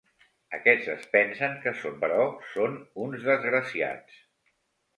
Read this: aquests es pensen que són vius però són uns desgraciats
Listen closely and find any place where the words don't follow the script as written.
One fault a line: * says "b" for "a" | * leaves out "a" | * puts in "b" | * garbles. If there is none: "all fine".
* leaves out "vius"